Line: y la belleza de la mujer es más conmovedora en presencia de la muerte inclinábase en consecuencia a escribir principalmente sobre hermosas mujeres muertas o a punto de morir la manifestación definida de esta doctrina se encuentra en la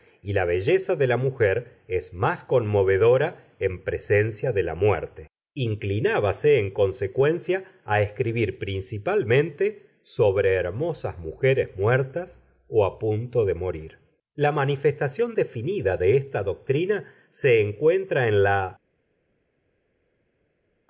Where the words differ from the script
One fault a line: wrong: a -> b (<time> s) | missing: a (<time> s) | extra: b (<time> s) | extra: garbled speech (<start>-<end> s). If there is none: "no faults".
no faults